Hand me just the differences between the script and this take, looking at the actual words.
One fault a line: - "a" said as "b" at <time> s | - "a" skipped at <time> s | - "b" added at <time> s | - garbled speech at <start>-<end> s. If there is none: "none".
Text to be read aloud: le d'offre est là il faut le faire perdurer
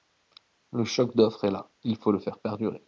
- "choc" added at 0.8 s